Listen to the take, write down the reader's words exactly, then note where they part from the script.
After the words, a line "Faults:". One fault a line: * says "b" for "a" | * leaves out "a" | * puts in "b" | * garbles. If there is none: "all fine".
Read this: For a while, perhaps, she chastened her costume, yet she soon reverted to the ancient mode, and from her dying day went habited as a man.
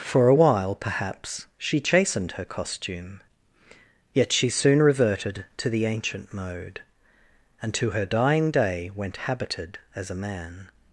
For a while, perhaps, she chastened her costume, yet she soon reverted to the ancient mode, and to her dying day went habited as a man.
Faults:
* says "to" for "from"